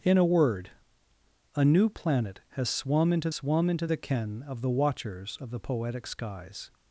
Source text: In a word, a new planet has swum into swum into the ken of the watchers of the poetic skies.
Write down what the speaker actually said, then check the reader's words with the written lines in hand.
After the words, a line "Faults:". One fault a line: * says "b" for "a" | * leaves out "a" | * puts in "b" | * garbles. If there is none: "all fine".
In a word, a new planet has swum into swum into the ken of the watchers of the poetic skies.
Faults:
all fine